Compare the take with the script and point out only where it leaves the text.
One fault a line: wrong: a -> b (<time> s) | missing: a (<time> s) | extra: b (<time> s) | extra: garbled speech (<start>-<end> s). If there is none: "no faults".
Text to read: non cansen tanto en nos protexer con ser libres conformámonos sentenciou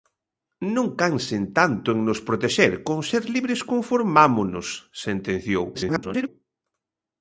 extra: garbled speech (5.7-6.3 s)